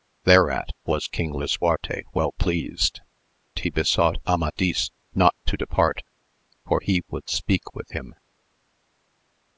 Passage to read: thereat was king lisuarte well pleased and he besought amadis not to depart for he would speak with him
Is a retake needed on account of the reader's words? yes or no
yes